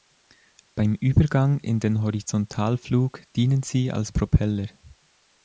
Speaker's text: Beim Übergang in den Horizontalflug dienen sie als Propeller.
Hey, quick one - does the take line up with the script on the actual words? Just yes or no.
yes